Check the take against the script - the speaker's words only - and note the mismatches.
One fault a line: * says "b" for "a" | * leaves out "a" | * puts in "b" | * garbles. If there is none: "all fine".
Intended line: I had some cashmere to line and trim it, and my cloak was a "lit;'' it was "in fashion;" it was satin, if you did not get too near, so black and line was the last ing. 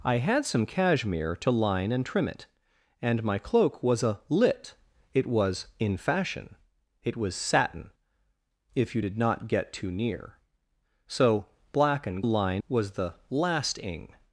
all fine